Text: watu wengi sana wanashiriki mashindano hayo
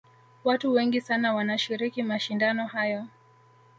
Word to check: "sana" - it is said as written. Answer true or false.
true